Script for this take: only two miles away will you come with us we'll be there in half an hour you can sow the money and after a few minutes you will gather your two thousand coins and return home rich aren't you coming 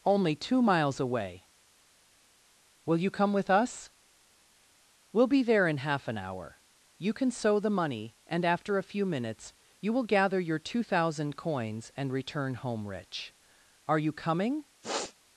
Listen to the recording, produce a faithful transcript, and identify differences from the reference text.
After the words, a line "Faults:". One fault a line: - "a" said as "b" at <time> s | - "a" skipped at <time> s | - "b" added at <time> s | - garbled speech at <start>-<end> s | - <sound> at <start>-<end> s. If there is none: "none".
only two miles away will you come with us we'll be there in half an hour you can sow the money and after a few minutes you will gather your two thousand coins and return home rich are you coming
Faults:
- "aren't" said as "are" at 13.9 s
- sniff at 14.8-15.1 s